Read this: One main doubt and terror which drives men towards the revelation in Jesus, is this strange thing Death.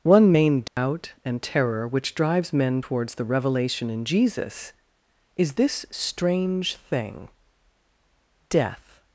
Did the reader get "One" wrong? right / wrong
right